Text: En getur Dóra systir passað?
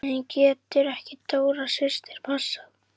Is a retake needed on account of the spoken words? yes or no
yes